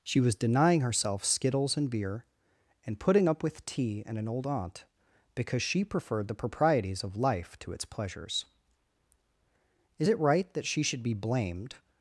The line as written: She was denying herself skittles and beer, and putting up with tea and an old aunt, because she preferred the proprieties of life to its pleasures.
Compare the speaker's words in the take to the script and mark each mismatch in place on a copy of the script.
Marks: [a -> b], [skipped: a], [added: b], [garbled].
She was denying herself skittles and beer, and putting up with tea and an old aunt, because she preferred the proprieties of life to its pleasures. [added: Is it right that she should be blamed]